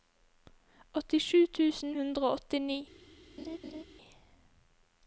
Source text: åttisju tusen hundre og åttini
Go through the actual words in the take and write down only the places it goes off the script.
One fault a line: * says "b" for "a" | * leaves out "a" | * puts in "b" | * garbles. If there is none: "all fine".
all fine